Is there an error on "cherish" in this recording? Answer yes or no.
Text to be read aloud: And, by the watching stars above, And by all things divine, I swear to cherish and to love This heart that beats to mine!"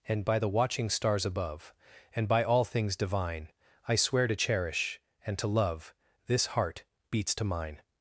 no